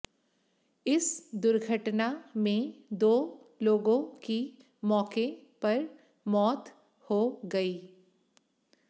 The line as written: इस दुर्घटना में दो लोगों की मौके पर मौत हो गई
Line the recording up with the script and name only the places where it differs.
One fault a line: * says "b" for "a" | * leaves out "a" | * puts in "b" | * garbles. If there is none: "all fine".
all fine